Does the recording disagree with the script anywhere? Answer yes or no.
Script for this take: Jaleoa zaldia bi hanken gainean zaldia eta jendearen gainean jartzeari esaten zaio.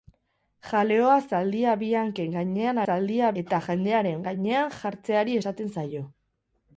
no